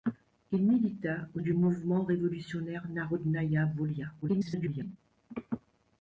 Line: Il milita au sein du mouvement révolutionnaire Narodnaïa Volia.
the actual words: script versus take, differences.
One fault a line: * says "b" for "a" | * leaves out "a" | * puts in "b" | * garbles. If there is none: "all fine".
* leaves out "sein"
* garbles